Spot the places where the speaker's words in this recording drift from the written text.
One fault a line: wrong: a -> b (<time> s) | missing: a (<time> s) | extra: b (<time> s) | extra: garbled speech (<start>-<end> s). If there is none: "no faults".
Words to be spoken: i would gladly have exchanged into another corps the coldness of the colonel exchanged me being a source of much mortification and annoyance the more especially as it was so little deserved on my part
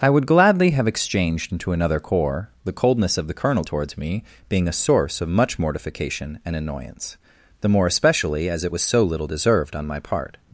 wrong: exchanged -> towards (3.6 s)